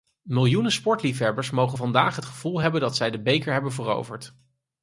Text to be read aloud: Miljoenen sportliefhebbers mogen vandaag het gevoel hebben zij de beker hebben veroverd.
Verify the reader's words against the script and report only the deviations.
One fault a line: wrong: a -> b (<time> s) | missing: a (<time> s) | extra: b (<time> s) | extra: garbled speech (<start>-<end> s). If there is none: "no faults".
extra: dat (2.8 s)